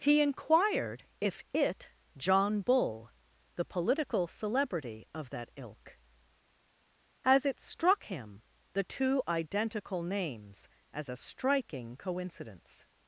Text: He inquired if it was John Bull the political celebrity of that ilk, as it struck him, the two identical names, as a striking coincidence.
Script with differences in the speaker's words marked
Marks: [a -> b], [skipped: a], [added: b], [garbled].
He inquired if it [skipped: was] John Bull the political celebrity of that ilk, as it struck him, the two identical names, as a striking coincidence.